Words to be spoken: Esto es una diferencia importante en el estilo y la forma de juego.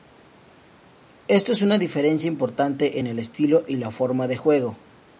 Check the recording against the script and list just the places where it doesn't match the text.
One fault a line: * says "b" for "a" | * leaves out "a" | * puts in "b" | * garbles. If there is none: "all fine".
all fine